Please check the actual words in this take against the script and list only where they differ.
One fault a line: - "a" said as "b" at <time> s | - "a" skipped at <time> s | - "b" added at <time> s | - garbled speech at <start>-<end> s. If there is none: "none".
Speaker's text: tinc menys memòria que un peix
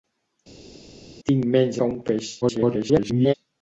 - "memòria" skipped at 1.8 s
- garbled speech at 2.4-3.3 s